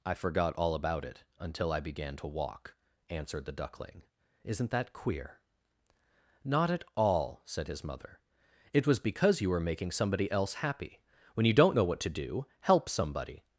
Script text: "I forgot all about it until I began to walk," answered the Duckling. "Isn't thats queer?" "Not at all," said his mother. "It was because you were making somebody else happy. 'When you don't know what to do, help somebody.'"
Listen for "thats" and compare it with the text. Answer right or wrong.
wrong